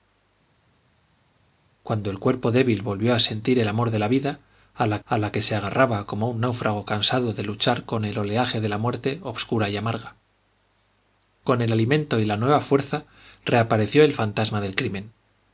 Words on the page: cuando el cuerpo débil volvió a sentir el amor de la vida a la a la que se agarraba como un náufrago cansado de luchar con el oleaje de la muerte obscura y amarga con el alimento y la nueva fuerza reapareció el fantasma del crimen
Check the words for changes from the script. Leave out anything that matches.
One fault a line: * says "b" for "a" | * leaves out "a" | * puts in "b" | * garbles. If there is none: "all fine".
all fine